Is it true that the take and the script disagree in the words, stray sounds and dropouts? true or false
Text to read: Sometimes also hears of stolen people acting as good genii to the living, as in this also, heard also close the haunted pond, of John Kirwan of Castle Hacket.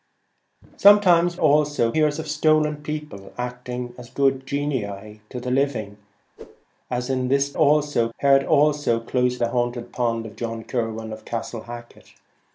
true